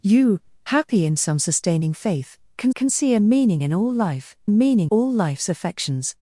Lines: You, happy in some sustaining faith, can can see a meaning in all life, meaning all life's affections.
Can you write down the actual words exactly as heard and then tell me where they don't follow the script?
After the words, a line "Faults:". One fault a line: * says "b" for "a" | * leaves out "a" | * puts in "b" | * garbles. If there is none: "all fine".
You, happy in some sustaining faith, can can see a meaning in all life, meaning all life's affections.
Faults:
all fine